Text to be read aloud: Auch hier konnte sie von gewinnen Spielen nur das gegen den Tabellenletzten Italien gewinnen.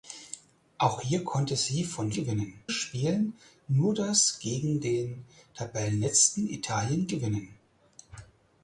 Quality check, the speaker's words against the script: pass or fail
pass